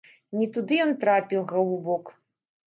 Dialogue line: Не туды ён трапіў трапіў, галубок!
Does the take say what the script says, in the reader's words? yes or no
no